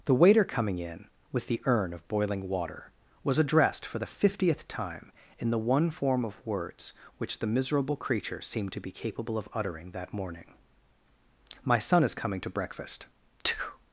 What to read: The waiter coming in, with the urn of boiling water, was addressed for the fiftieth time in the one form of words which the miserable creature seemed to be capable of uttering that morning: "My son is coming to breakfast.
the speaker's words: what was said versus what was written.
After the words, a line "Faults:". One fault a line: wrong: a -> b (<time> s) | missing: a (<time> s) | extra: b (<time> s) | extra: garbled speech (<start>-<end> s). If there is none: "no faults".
The waiter coming in, with the urn of boiling water, was addressed for the fiftieth time in the one form of words which the miserable creature seemed to be capable of uttering that morning: "My son is coming to breakfast.
Faults:
no faults